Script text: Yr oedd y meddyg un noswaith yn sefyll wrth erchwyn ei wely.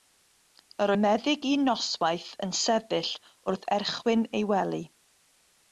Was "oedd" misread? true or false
true